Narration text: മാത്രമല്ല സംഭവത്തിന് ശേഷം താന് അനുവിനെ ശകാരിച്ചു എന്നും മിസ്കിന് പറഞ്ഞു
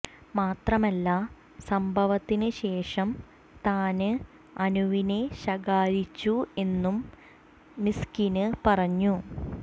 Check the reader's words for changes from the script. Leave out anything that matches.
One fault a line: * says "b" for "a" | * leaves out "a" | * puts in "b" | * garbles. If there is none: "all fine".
all fine